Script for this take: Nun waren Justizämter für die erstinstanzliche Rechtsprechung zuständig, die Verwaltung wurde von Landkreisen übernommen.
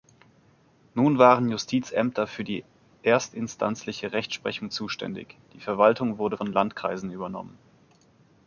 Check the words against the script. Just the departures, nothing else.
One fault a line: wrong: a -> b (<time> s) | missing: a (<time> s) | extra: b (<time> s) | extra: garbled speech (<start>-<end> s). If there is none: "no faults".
no faults